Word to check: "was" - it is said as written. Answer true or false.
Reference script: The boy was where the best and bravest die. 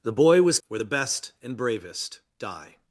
true